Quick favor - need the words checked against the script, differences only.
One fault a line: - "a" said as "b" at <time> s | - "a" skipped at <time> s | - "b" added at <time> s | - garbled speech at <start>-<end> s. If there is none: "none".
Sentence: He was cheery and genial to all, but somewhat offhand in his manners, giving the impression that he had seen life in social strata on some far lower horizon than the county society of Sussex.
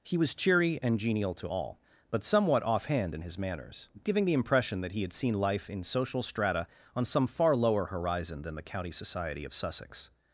none